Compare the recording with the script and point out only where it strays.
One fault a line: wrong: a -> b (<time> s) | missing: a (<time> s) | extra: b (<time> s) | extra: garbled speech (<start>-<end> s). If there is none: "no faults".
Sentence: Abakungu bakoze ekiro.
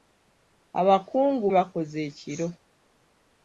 no faults